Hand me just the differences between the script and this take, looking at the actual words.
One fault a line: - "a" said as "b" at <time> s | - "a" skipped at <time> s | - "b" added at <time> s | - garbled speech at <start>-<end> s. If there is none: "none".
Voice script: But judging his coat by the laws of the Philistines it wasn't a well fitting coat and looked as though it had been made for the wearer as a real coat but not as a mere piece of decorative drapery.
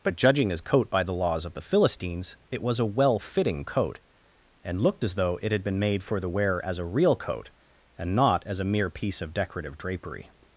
- "wasn't" said as "was" at 2.6 s
- "but" said as "and" at 8.0 s